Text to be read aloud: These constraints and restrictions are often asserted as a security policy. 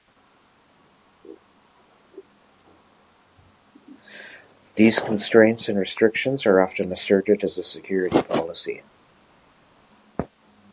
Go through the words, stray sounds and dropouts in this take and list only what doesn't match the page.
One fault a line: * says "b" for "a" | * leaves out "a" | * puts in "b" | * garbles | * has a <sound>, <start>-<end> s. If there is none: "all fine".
all fine